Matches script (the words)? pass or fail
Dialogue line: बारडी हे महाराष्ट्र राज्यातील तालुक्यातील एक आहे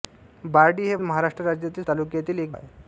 pass